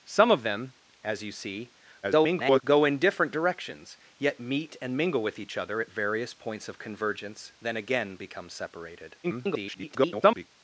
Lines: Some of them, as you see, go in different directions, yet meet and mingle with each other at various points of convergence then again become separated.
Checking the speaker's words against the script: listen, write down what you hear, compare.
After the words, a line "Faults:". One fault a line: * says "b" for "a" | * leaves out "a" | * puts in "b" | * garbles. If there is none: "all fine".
Some of them, as you see, [garbled] go in different directions, yet meet and mingle with each other at various points of convergence then again become separated. [garbled]
Faults:
* garbles
* garbles